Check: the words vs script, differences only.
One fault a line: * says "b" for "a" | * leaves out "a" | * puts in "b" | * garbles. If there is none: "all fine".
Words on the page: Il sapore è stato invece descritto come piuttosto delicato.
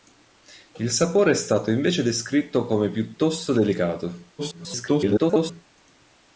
* garbles